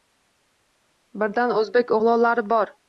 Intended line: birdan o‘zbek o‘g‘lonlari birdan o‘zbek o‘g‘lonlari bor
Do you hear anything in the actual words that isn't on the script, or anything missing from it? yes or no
yes